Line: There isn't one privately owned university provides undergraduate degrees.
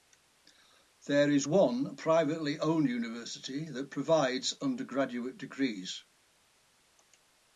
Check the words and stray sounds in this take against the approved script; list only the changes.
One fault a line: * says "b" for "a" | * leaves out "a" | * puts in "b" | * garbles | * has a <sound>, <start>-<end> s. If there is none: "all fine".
* says "is" for "isn't"
* puts in "that"